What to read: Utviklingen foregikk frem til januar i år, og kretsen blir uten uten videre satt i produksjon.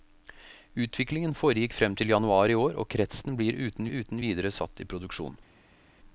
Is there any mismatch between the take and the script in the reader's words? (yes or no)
no